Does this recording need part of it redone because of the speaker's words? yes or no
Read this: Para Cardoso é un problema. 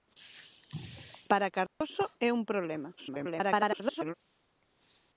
yes